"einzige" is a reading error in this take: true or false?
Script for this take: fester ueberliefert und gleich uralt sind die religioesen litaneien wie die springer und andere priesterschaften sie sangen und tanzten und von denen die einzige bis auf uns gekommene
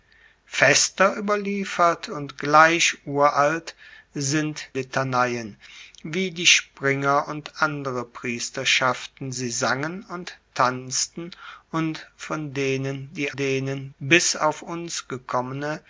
true